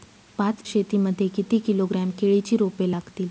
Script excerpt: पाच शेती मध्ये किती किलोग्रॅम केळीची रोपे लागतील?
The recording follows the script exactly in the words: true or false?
true